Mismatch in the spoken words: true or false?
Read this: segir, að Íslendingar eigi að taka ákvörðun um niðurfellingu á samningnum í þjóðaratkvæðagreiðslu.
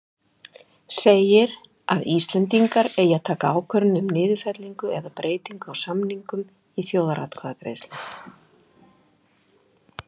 true